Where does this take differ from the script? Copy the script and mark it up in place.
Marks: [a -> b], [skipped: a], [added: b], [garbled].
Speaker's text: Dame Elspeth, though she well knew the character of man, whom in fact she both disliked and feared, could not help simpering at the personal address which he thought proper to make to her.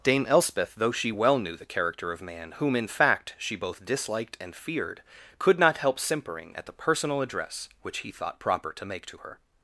Dame Elspeth, though she well knew the character of man, whom in fact she both disliked and feared, could not help simpering at the personal address which he thought proper to make to her.